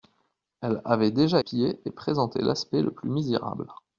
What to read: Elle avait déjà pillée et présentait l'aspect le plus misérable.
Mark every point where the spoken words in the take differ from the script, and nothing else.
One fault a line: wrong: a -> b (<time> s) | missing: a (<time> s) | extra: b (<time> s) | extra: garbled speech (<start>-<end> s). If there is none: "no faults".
no faults